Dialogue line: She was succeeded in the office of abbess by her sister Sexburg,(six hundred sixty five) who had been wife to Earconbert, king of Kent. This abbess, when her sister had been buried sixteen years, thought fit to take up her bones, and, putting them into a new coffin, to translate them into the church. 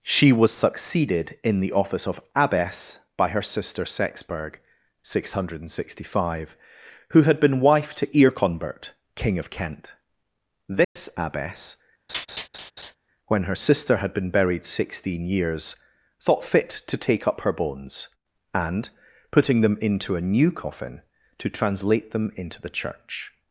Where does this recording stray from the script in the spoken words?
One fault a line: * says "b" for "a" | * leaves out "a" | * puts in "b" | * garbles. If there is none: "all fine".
all fine